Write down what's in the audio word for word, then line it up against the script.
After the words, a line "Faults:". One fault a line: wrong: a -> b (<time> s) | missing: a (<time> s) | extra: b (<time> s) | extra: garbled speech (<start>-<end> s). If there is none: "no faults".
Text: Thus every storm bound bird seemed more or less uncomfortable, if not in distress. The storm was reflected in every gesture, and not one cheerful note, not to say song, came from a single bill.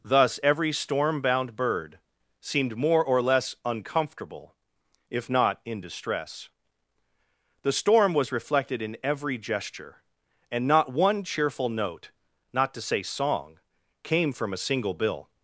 Thus every storm bound bird seemed more or less uncomfortable, if not in distress. The storm was reflected in every gesture, and not one cheerful note, not to say song, came from a single bill.
Faults:
no faults